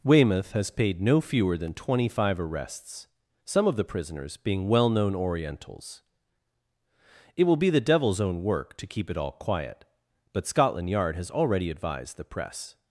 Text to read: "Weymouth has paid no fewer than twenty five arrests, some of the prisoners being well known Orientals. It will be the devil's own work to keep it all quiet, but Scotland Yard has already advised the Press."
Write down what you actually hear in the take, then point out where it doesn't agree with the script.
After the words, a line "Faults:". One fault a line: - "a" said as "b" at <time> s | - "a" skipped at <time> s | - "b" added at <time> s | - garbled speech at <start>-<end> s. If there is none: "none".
"Weymouth has paid no fewer than twenty five arrests, some of the prisoners being well known Orientals. It will be the devil's own work to keep it all quiet, but Scotland Yard has already advised the Press."
Faults:
none